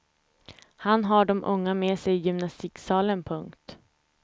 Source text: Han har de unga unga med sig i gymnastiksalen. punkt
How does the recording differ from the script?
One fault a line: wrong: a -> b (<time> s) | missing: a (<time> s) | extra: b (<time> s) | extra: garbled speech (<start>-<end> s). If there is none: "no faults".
missing: unga (1.7 s)